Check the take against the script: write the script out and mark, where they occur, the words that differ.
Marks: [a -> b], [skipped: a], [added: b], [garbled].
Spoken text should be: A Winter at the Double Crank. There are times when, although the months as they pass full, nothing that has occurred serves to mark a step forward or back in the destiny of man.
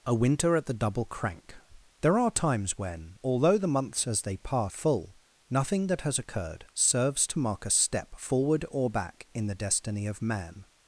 A Winter at the Double Crank. There are times when, although the months as they pass full, nothing that has occurred serves to mark a step forward or back in the destiny of man.